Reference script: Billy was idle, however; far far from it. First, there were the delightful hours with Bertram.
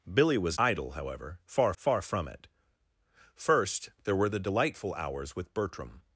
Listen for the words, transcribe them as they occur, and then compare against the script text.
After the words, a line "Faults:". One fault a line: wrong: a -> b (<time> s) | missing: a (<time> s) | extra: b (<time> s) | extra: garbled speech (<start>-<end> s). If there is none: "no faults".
Billy was idle, however; far far from it. First, there were the delightful hours with Bertram.
Faults:
no faults